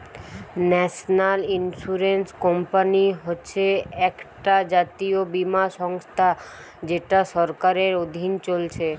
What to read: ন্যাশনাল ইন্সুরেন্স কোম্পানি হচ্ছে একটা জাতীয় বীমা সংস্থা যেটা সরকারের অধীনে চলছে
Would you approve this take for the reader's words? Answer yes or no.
yes